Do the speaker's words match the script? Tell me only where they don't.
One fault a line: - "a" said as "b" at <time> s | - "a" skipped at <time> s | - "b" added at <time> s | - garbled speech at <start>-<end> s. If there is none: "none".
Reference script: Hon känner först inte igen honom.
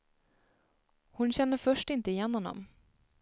none